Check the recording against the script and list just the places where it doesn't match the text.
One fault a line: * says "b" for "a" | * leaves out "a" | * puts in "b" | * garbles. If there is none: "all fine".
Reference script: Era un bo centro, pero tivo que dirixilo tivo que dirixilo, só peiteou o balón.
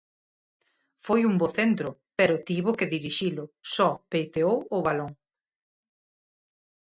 * says "Foi" for "Era"
* leaves out "tivo que dirixilo"